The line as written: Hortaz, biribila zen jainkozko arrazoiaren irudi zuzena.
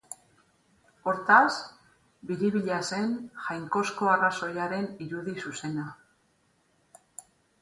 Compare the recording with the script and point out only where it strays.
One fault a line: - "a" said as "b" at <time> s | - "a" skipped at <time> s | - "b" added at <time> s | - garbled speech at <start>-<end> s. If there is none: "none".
none